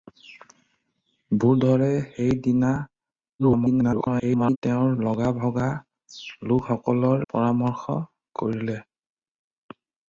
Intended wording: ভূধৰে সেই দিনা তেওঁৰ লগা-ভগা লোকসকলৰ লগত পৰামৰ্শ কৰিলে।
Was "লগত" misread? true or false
true